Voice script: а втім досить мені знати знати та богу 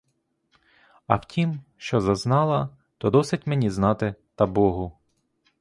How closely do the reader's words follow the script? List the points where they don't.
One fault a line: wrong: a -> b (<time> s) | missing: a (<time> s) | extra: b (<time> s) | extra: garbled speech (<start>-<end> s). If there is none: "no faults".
extra: що зазнала то (1.8 s)
missing: знати (4.1 s)